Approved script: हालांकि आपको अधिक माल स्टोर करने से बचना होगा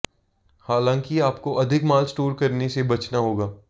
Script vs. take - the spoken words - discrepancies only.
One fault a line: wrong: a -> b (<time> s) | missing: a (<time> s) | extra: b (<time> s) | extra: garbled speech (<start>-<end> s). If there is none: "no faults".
no faults